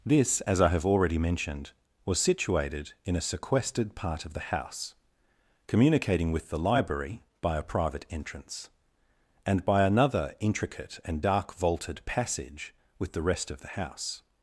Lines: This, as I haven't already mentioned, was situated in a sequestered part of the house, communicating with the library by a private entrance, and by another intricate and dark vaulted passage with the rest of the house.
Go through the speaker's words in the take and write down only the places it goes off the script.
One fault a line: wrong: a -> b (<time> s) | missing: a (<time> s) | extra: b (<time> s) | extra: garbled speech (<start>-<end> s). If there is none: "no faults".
wrong: haven't -> have (0.7 s)